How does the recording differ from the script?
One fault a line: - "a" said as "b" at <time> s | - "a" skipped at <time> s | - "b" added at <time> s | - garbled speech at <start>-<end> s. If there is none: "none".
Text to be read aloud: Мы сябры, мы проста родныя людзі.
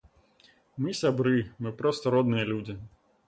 none